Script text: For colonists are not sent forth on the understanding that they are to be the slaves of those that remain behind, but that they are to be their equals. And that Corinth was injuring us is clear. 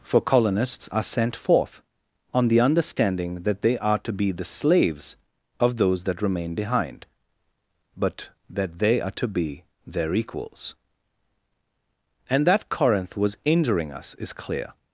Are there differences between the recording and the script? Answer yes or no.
yes